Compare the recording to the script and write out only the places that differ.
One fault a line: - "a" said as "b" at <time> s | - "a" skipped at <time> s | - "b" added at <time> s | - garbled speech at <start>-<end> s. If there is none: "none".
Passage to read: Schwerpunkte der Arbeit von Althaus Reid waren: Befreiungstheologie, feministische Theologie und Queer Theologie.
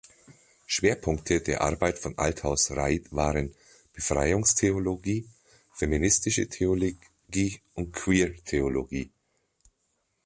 none